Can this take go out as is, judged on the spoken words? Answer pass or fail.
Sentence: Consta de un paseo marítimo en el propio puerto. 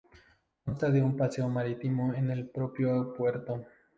pass